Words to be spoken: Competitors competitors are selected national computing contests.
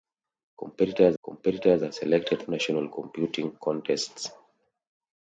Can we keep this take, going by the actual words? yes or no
yes